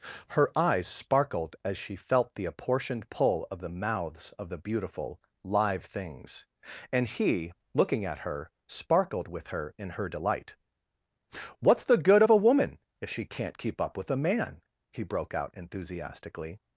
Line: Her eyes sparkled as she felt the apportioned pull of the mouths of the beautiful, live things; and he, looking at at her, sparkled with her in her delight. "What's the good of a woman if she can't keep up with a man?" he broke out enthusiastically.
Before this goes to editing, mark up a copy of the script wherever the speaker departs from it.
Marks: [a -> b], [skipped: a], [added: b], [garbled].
Her eyes sparkled as she felt the apportioned pull of the mouths of the beautiful, live things; and he, looking at [skipped: at] her, sparkled with her in her delight. "What's the good of a woman if she can't keep up with a man?" he broke out enthusiastically.